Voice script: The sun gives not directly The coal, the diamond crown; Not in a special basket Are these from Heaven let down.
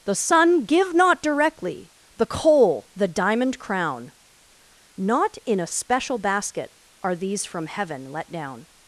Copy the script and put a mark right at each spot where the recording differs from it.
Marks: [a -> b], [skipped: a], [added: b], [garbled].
The sun [gives -> give] not directly The coal, the diamond crown; Not in a special basket Are these from Heaven let down.